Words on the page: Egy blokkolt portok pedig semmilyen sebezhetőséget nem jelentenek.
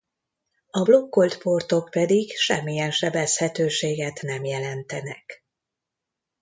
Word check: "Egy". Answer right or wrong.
wrong